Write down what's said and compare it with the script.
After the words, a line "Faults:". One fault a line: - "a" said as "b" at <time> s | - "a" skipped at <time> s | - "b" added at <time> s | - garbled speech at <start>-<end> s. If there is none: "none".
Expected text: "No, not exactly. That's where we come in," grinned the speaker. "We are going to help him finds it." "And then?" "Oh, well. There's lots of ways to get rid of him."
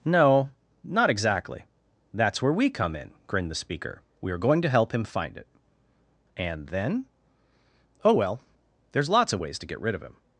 "No, not exactly. That's where we come in," grinned the speaker. "We are going to help him find it." "And then?" "Oh, well. There's lots of ways to get rid of him."
Faults:
- "finds" said as "find" at 5.0 s